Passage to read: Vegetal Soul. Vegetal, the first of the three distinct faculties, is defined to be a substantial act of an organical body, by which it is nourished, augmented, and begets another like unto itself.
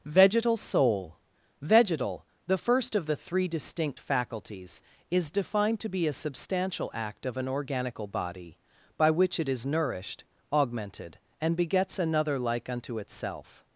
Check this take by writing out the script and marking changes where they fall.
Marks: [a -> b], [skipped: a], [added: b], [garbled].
Vegetal Soul. Vegetal, the first of the three distinct faculties, is defined to be a substantial act of an organical body, by which it is nourished, augmented, and begets another like unto itself.